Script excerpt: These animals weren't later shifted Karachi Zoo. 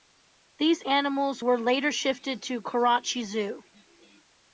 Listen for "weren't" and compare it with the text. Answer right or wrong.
wrong